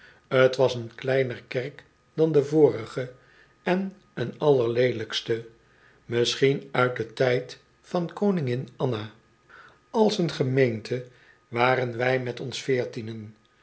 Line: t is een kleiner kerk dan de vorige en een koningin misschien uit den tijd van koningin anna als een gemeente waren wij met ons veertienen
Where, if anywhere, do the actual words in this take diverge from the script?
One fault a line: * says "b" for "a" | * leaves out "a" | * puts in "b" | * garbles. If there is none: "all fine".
* says "was" for "is"
* says "allerleelijkste" for "koningin"